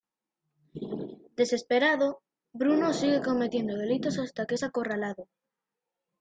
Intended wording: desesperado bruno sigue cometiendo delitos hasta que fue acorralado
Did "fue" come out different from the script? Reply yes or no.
yes